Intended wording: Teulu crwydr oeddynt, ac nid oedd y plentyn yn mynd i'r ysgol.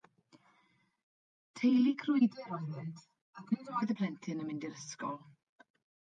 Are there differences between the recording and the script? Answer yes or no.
no